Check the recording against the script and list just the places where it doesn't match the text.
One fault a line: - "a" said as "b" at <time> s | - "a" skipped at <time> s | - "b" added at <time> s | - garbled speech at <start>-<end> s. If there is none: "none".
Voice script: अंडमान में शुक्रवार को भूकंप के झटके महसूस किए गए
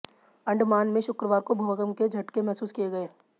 none